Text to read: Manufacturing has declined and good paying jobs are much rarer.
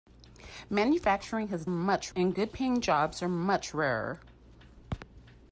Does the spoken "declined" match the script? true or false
false